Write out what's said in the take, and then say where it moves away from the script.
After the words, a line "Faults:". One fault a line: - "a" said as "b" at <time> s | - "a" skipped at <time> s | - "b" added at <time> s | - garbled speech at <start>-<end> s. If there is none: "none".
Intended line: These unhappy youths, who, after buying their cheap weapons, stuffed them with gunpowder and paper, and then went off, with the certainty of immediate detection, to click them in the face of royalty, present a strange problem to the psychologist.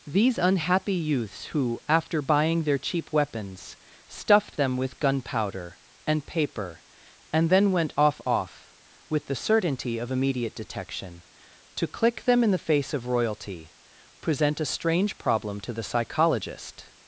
These unhappy youths, who, after buying their cheap weapons, stuffed them with gunpowder and paper, and then went off off, with the certainty of immediate detection, to click them in the face of royalty, present a strange problem to the psychologist.
Faults:
- "off" added at 8.2 s